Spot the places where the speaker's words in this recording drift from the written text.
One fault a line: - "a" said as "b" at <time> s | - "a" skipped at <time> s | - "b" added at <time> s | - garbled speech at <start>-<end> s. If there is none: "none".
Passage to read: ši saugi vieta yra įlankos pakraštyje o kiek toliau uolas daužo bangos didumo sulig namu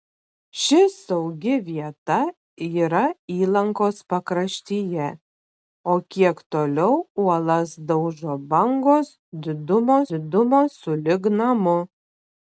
- "didumo" added at 10.1 s